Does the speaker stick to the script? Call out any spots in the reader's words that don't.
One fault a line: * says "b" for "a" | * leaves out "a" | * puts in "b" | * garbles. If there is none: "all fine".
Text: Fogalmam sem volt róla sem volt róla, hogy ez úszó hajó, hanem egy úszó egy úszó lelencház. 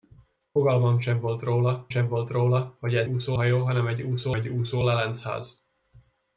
all fine